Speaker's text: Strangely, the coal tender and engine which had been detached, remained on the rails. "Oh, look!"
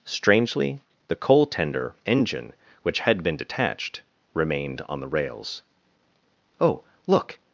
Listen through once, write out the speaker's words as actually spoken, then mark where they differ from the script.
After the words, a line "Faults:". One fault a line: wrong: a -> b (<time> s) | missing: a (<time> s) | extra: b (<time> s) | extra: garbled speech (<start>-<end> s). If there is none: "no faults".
Strangely, the coal tender engine which had been detached, remained on the rails. "Oh, look!"
Faults:
missing: and (1.9 s)